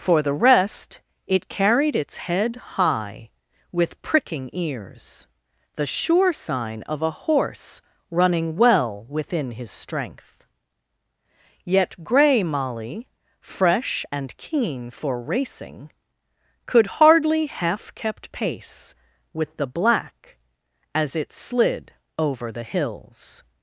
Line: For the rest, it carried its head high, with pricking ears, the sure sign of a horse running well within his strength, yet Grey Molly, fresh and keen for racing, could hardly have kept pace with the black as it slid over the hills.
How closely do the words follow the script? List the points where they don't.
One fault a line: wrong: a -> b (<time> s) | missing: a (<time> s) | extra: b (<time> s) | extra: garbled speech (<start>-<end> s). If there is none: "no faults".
wrong: have -> half (17.5 s)